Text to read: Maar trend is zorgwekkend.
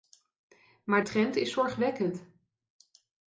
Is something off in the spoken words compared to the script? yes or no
no